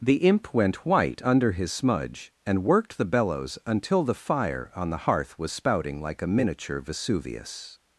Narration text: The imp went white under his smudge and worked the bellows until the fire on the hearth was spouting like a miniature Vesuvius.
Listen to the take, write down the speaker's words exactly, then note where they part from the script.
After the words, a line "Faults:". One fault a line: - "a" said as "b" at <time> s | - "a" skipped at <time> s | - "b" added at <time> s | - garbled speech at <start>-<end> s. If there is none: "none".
The imp went white under his smudge and worked the bellows until the fire on the hearth was spouting like a miniature Vesuvius.
Faults:
none